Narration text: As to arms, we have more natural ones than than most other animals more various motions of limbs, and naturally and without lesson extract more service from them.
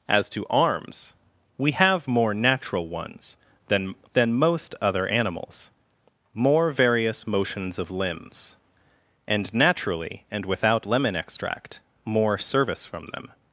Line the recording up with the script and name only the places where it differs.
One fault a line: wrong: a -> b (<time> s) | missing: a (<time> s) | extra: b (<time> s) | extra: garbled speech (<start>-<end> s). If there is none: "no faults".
wrong: lesson -> lemon (10.8 s)